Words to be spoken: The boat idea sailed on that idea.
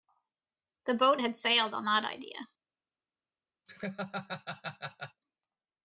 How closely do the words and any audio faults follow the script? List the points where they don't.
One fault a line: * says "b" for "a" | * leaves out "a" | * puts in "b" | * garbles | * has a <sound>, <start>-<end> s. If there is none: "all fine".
* says "had" for "idea"
* has a laugh, 3.7-5.2 s